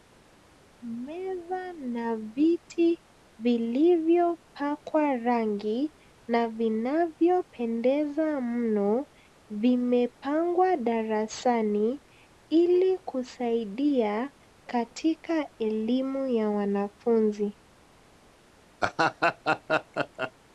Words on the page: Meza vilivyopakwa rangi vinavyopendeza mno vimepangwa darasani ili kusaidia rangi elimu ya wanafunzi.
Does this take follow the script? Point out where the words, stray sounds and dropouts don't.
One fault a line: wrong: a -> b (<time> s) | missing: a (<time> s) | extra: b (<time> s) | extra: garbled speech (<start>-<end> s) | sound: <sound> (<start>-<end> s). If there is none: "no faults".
extra: na viti (1.7 s)
extra: na (6.3 s)
wrong: rangi -> katika (14.7 s)
sound: laugh (18.8-20.3 s)